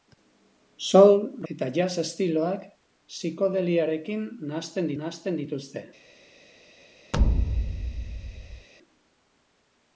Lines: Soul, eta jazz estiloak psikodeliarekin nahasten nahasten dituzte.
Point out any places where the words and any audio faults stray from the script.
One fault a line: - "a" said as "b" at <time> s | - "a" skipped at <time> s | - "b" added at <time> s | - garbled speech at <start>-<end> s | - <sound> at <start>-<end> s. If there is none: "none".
- thud at 7.1-8.7 s